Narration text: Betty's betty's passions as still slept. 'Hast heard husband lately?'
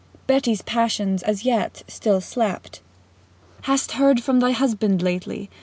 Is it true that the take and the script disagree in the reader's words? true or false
true